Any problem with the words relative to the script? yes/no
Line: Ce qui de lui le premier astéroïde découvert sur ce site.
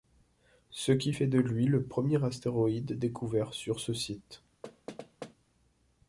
yes